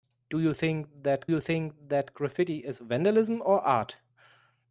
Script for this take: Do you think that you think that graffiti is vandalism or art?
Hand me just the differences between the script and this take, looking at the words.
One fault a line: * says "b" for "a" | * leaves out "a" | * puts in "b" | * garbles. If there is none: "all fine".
all fine